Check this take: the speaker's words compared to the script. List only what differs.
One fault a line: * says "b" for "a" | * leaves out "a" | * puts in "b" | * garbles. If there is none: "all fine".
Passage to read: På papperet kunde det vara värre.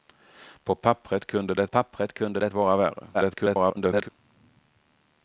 * puts in "papperet kunde det"
* garbles